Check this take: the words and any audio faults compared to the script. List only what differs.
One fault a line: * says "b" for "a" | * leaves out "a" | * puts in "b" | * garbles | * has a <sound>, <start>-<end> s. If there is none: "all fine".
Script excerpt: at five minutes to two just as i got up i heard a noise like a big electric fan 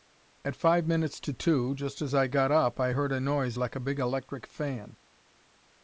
all fine